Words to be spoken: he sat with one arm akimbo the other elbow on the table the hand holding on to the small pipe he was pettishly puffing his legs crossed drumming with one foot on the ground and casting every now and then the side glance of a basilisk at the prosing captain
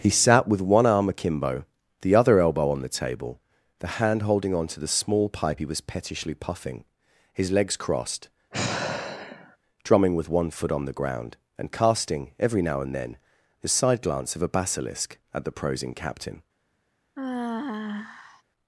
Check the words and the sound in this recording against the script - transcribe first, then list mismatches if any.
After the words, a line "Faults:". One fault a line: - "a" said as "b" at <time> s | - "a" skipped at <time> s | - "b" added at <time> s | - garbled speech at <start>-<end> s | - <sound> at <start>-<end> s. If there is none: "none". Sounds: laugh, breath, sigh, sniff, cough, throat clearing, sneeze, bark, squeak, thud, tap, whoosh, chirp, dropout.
he sat with one arm akimbo the other elbow on the table the hand holding on to the small pipe he was pettishly puffing his legs crossed drumming with one foot on the ground and casting every now and then the side glance of a basilisk at the prosing captain
Faults:
- sigh at 8.5-9.6 s
- sigh at 17.2-18.4 s